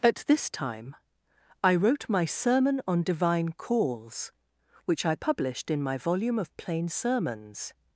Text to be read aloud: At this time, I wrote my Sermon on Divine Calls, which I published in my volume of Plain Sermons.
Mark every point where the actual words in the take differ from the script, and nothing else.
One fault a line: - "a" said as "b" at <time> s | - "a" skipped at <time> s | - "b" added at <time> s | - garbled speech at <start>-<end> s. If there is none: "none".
none